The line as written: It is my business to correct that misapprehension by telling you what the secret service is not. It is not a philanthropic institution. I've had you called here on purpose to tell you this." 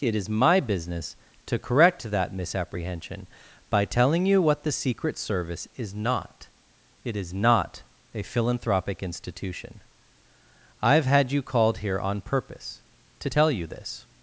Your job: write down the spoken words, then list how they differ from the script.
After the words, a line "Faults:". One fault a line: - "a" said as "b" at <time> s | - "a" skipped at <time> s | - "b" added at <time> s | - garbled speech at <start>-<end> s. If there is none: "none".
It is my business to correct that misapprehension by telling you what the secret service is not. It is not a philanthropic institution. I've had you called here on purpose to tell you this."
Faults:
none